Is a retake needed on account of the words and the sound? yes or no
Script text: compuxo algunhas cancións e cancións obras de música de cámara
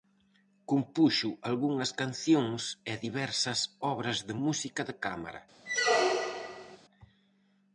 yes